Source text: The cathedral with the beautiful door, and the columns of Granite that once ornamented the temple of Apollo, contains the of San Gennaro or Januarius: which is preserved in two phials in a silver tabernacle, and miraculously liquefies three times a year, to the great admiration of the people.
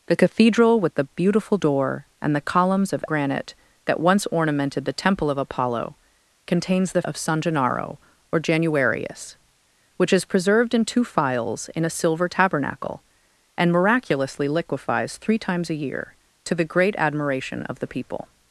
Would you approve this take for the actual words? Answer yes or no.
yes